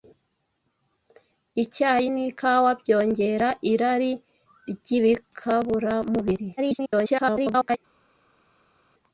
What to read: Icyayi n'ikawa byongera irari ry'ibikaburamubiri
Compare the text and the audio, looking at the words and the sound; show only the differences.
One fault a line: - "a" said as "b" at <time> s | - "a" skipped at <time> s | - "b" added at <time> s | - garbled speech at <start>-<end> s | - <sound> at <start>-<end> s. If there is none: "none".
- garbled speech at 6.6-7.8 s